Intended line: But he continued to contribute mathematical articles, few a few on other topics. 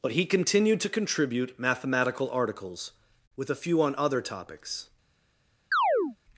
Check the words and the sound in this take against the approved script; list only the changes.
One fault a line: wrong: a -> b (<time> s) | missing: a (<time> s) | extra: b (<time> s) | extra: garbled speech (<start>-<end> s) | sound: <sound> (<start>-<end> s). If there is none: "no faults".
wrong: few -> with (3.4 s)
sound: chirp (5.7-6.2 s)